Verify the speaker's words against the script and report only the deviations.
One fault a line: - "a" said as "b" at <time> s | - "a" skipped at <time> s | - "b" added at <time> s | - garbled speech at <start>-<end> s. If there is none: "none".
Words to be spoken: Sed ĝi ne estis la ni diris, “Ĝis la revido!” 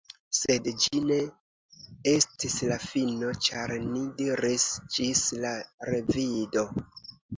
- "fino ĉar" added at 2.9 s